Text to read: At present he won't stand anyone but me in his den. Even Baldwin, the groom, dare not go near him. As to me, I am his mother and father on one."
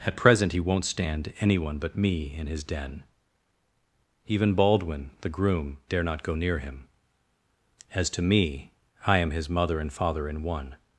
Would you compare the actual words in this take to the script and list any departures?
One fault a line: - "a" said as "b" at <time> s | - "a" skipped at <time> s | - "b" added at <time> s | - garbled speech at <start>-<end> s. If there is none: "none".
- "on" said as "in" at 10.3 s